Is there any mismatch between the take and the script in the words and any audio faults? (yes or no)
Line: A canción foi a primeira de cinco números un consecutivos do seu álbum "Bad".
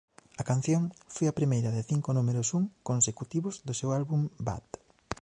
no